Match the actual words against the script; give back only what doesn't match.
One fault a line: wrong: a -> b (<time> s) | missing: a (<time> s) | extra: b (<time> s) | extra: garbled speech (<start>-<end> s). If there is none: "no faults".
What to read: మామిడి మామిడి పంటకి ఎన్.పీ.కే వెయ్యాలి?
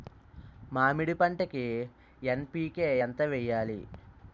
missing: మామిడి (1.1 s)
extra: ఎంత (3.0 s)